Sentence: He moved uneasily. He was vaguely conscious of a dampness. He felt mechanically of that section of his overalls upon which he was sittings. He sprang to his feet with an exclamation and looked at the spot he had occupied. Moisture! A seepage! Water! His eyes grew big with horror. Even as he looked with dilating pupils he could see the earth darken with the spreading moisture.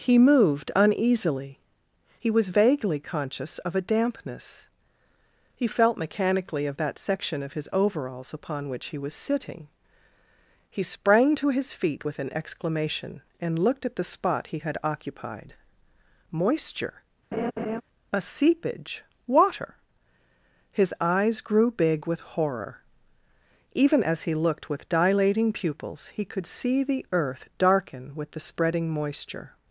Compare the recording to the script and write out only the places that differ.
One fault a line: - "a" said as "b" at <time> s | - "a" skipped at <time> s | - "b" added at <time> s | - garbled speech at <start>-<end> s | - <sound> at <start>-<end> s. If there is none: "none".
- "sittings" said as "sitting" at 9.1 s
- laugh at 17.3-17.8 s